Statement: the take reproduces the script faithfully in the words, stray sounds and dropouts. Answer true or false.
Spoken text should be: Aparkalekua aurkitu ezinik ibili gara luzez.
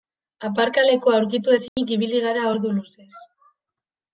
false